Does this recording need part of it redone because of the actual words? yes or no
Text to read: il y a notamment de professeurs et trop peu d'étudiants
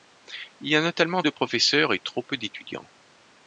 no